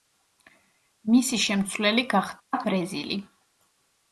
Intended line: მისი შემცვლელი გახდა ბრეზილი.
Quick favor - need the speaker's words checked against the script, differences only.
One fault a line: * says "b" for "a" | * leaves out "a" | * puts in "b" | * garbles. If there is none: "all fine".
all fine